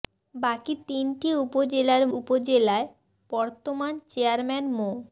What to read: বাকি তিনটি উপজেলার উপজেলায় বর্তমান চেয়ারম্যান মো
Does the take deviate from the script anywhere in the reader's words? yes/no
no